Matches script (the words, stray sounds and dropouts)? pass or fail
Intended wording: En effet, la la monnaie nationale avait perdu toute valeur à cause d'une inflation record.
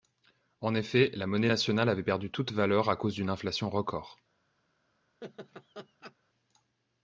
fail